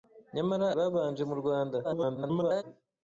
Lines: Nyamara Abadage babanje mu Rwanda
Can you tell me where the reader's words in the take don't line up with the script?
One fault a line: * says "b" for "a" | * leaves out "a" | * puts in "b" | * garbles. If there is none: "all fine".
* leaves out "Abadage"
* garbles